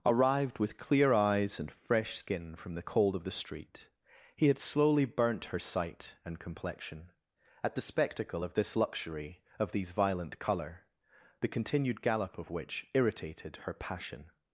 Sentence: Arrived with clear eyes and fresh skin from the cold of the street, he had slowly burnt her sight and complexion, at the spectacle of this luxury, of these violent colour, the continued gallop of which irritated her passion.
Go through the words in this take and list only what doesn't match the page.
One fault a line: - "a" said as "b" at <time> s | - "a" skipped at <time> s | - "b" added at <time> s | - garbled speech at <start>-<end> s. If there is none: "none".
none